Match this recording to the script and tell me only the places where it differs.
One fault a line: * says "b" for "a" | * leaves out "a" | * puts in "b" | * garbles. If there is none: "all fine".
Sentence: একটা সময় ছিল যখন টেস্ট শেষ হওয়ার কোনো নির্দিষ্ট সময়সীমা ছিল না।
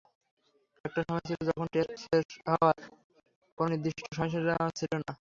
all fine